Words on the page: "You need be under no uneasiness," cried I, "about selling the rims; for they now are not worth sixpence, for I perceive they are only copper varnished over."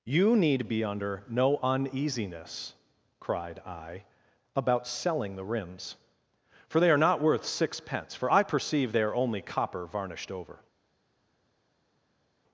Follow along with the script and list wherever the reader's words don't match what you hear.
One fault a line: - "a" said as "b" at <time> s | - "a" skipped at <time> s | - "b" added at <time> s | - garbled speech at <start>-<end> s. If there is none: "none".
- "now" skipped at 6.9 s